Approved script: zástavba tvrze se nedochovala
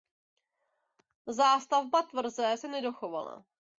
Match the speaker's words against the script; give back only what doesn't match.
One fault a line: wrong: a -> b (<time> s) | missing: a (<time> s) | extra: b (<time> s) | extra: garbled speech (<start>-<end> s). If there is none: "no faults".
no faults